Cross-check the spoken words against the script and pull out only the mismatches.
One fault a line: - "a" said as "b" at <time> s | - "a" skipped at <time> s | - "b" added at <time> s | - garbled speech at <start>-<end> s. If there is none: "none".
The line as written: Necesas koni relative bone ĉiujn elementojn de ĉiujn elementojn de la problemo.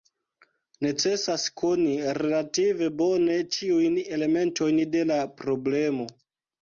- "ĉiujn elementojn de" skipped at 5.0 s